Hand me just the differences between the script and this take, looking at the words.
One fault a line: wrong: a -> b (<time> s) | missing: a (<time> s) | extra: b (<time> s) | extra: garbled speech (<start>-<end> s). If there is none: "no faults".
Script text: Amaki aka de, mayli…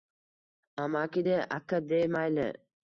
extra: de (1.2 s)